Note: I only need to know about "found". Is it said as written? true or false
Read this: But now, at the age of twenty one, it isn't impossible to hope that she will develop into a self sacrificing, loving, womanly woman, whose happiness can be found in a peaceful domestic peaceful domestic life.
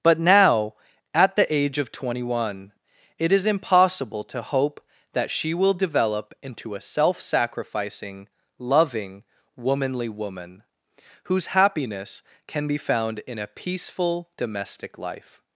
true